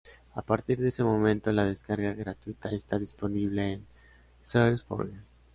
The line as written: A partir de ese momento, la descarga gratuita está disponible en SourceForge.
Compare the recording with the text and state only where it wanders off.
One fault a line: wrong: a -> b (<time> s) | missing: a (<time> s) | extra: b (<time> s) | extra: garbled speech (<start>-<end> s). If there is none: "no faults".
no faults